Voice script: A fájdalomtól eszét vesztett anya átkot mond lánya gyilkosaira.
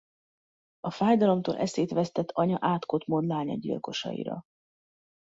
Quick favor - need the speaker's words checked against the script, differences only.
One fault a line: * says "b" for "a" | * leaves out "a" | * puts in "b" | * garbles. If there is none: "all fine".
all fine